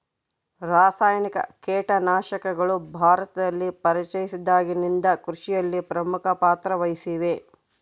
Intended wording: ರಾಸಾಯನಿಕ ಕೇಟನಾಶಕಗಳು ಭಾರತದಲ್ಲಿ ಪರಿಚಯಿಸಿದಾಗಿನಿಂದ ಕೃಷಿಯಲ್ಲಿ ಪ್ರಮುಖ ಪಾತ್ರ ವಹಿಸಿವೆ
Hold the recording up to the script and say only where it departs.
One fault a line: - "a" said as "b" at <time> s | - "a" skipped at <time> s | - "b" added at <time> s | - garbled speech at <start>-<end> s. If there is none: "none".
none